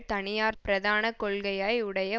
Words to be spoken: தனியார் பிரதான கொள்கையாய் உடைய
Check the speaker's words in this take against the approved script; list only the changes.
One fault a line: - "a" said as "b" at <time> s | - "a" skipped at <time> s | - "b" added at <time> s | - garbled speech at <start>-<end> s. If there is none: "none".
none